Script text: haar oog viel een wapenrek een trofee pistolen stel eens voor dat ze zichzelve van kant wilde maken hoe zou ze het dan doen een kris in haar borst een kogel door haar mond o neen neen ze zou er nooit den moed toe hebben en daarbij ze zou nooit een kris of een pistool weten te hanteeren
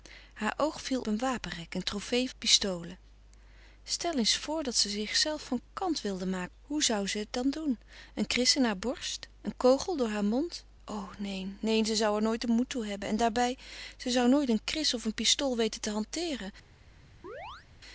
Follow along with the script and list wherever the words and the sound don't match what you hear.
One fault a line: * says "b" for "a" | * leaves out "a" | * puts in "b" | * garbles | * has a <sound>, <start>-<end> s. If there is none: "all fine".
* has a chirp, 17.2-17.7 s